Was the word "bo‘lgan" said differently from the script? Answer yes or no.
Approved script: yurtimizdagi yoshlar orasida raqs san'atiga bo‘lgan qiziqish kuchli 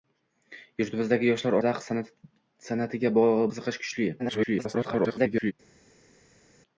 yes